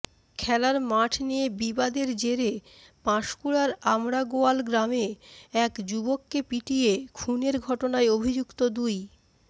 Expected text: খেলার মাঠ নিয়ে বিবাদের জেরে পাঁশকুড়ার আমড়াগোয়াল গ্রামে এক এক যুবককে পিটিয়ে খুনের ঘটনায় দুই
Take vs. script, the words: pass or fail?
fail